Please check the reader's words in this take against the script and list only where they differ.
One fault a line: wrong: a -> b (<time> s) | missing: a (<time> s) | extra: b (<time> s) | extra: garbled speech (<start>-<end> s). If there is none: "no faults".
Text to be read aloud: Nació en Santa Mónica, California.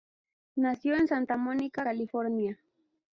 no faults